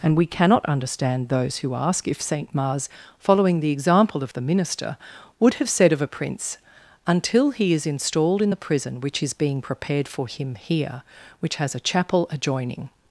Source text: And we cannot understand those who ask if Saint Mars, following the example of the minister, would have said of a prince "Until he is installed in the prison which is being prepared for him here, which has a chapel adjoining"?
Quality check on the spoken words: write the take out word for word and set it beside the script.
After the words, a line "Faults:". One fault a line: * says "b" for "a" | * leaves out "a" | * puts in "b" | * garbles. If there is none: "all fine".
And we cannot understand those who ask if Saint Mars, following the example of the minister, would have said of a prince "Until he is installed in the prison which is being prepared for him here, which has a chapel adjoining"?
Faults:
all fine